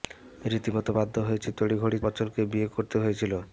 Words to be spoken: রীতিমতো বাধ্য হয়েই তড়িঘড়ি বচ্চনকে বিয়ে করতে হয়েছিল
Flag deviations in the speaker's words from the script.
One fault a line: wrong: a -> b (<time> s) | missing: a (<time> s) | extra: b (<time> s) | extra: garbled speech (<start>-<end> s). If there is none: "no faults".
no faults